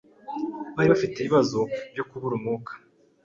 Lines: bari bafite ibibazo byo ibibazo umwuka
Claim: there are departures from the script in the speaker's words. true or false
true